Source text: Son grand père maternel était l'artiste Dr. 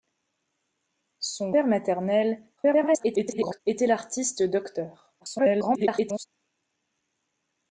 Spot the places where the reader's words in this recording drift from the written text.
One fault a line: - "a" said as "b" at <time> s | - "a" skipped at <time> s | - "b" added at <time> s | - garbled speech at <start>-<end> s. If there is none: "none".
- "grand" skipped at 1.5 s
- garbled speech at 2.6-3.6 s
- garbled speech at 5.2-6.3 s